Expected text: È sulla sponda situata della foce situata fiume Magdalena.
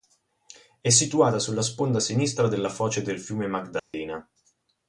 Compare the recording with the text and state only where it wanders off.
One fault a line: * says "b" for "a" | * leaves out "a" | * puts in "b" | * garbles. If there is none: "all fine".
* puts in "situata"
* says "sinistra" for "situata"
* says "del" for "situata"